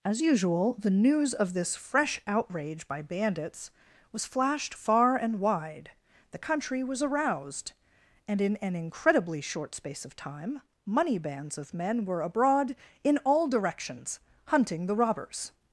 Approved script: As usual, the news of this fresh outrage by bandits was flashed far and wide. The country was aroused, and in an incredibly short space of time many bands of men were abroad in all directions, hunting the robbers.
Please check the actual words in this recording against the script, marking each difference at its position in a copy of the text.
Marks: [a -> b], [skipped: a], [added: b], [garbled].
As usual, the news of this fresh outrage by bandits was flashed far and wide. The country was aroused, and in an incredibly short space of time [many -> money] bands of men were abroad in all directions, hunting the robbers.